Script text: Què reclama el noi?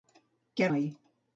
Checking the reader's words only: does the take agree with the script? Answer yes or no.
no